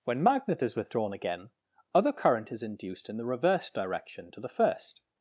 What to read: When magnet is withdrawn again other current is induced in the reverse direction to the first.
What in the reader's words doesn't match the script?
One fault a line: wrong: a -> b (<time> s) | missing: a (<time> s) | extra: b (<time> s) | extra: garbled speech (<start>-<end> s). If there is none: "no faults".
no faults